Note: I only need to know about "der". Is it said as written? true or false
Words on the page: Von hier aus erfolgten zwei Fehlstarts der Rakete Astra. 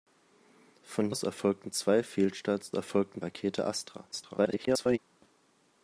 false